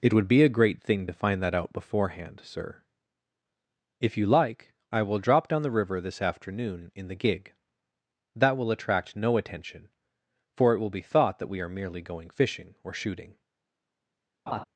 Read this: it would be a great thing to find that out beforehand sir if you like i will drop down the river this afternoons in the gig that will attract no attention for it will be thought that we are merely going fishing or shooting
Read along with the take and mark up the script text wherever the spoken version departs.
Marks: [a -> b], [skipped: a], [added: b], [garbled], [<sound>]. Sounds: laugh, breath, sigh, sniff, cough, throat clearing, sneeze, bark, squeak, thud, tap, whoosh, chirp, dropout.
it would be a great thing to find that out beforehand sir if you like i will drop down the river this [afternoons -> afternoon] in the gig that will attract no attention for it will be thought that we are merely going fishing or shooting [laugh]